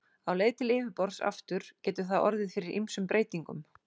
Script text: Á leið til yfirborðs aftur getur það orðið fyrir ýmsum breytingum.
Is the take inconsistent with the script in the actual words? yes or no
no